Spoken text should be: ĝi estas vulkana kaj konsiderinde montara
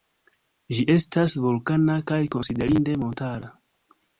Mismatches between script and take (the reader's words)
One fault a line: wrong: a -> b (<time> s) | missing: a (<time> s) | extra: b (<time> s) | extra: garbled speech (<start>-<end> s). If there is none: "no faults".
no faults